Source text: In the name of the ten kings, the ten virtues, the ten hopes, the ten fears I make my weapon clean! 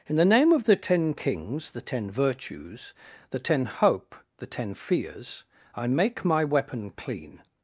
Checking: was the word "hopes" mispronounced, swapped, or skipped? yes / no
yes